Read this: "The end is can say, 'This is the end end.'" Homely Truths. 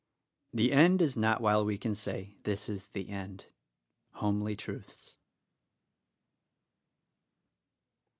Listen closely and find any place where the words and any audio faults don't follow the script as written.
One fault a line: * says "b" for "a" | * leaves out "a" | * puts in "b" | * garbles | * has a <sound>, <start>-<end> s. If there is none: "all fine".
* puts in "not while we"
* leaves out "end"